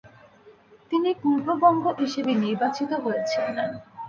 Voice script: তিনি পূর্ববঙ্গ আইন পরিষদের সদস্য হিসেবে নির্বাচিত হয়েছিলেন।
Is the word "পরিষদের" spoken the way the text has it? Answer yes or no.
no